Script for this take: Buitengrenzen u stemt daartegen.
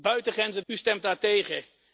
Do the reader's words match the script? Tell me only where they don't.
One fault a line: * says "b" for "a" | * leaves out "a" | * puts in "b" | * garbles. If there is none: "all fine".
all fine